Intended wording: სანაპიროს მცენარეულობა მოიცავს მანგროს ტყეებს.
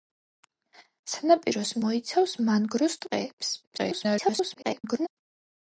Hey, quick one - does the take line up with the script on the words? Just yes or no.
no